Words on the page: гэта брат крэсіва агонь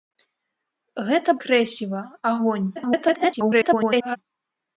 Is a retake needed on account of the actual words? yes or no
yes